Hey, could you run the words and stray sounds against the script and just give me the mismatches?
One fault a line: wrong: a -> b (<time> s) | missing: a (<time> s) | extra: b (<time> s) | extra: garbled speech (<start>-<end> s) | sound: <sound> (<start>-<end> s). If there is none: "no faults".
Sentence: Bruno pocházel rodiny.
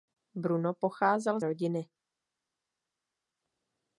no faults